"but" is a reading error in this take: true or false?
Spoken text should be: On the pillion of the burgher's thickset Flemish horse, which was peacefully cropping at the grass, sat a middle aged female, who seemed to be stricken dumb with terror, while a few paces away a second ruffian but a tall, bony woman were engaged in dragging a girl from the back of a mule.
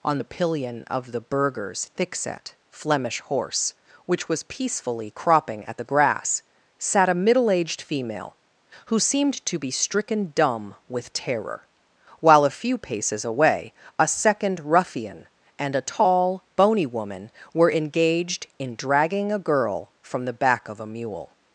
true